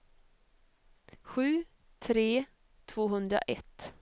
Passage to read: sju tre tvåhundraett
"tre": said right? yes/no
yes